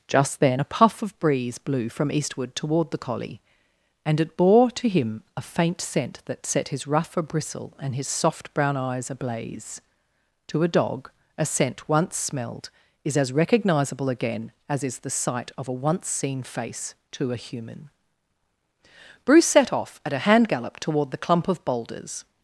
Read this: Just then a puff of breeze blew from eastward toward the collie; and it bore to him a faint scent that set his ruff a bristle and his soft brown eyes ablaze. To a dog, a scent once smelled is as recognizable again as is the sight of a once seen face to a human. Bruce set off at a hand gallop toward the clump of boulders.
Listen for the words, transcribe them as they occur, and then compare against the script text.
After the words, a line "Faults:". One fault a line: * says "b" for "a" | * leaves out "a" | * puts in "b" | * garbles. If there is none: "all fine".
Just then a puff of breeze blew from eastward toward the collie; and it bore to him a faint scent that set his ruff a bristle and his soft brown eyes ablaze. To a dog, a scent once smelled is as recognizable again as is the sight of a once seen face to a human. Bruce set off at a hand gallop toward the clump of boulders.
Faults:
all fine